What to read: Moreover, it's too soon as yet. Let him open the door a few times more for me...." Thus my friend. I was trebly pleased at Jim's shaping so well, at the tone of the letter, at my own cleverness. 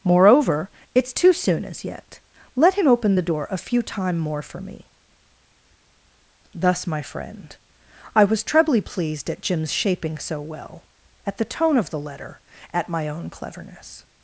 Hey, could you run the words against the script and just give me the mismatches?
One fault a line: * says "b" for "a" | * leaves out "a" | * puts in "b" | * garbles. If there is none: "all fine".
* says "time" for "times"